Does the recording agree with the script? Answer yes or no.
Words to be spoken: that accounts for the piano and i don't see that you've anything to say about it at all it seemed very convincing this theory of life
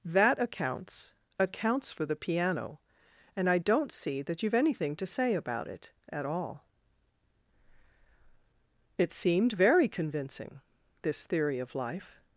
no